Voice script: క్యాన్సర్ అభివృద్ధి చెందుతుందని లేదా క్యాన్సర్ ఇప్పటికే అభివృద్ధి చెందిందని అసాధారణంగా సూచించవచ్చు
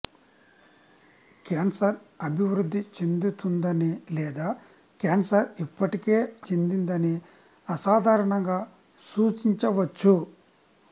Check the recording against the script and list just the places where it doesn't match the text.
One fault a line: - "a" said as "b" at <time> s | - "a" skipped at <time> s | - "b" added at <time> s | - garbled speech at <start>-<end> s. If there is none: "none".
- "అభివృద్ధి" skipped at 6.2 s